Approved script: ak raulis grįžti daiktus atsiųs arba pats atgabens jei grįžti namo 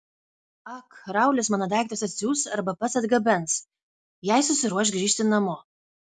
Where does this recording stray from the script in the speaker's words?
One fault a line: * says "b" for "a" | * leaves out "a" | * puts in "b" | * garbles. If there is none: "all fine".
* says "mano" for "grįžti"
* puts in "susiruoš"